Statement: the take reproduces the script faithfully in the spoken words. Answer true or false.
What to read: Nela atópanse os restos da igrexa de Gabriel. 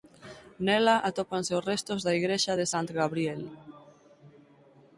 false